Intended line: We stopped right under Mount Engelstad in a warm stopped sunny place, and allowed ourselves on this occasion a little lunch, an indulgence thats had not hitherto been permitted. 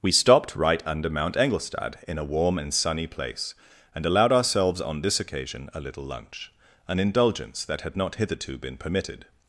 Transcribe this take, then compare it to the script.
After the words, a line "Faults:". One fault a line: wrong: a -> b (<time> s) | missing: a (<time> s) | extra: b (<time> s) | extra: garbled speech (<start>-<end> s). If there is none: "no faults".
We stopped right under Mount Engelstad in a warm and sunny place, and allowed ourselves on this occasion a little lunch, an indulgence that had not hitherto been permitted.
Faults:
wrong: stopped -> and (2.6 s)
wrong: thats -> that (7.7 s)